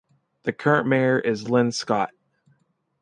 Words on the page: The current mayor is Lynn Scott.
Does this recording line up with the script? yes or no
yes